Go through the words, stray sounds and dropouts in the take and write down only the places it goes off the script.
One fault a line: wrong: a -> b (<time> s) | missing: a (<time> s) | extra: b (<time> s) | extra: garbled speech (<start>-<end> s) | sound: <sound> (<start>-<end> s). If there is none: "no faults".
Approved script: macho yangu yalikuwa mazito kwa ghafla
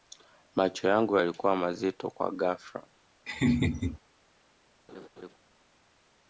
sound: laugh (3.3-4.0 s)
sound: laugh (4.9-5.4 s)